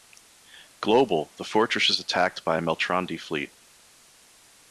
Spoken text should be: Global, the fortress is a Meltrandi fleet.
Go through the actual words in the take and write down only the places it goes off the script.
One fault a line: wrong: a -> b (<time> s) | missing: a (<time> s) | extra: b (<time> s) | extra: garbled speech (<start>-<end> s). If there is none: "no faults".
extra: attacked by (2.0 s)